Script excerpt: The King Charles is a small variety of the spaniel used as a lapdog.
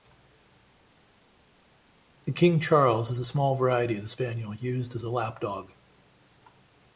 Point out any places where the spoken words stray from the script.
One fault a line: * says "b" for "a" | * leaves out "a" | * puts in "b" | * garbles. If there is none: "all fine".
all fine